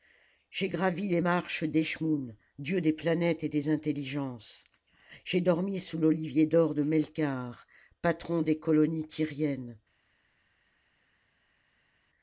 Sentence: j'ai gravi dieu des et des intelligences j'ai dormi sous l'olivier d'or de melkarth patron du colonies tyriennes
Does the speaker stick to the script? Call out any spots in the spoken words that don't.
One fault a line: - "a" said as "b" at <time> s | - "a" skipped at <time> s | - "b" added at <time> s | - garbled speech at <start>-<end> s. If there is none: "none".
- "les marches d'eschmoûn" added at 1.1 s
- "planètes" added at 2.9 s
- "du" said as "des" at 8.4 s